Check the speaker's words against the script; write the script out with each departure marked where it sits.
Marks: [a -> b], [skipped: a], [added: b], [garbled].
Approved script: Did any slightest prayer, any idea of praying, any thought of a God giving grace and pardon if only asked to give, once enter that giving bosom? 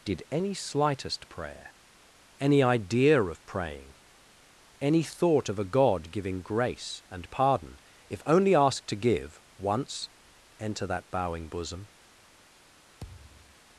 Did any slightest prayer, any idea of praying, any thought of a God giving grace and pardon if only asked to give, once enter that [giving -> bowing] bosom?